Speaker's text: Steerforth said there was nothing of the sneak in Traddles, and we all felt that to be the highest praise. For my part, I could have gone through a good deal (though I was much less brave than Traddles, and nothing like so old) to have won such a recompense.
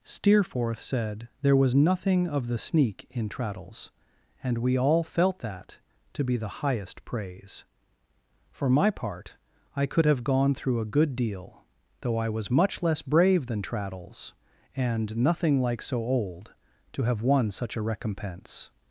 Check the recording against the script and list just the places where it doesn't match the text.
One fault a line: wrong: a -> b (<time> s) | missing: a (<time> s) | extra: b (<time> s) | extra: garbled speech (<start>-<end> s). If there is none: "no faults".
no faults